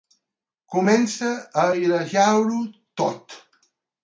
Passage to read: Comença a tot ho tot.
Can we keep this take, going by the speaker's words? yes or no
no